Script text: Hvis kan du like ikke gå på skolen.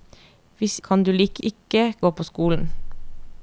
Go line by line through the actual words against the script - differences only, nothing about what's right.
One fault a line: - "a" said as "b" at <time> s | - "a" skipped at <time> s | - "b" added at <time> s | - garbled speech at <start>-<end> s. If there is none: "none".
none